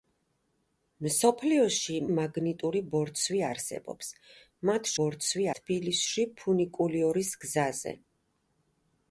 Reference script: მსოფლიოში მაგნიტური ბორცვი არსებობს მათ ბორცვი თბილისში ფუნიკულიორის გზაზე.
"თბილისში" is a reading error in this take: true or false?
false